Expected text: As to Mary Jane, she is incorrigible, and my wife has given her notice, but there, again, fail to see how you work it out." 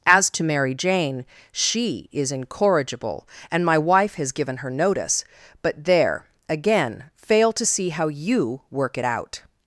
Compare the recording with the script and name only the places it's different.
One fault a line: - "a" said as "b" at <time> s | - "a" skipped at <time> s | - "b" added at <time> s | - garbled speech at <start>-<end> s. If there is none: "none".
none